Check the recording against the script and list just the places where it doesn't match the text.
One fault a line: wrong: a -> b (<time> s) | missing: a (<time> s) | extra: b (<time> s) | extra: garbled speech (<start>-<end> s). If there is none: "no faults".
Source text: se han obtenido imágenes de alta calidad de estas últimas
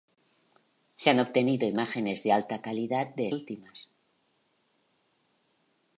missing: estas (3.3 s)